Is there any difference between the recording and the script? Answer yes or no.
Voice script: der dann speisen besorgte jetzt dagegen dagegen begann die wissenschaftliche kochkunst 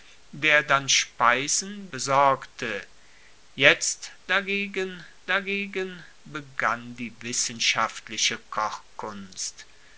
no